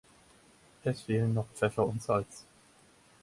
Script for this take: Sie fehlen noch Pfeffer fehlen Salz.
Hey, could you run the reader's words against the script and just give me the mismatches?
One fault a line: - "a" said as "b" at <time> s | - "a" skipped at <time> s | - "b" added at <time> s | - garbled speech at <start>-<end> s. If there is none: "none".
- "Sie" said as "Es" at 0.8 s
- "fehlen" said as "und" at 1.9 s